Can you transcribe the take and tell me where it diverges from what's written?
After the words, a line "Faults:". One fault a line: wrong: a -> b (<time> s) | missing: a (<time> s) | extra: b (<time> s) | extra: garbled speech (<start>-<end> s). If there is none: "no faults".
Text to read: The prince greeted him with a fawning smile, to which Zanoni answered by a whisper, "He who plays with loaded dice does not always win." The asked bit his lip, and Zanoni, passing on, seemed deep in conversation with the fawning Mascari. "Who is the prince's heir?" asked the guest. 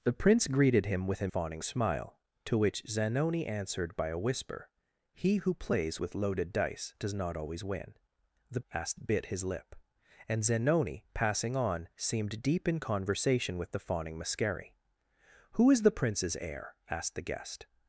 The prince greeted him with a fawning smile, to which Zanoni answered by a whisper, "He who plays with loaded dice does not always win." The asked bit his lip, and Zanoni, passing on, seemed deep in conversation with the fawning Mascari. "Who is the prince's heir?" asked the guest.
Faults:
no faults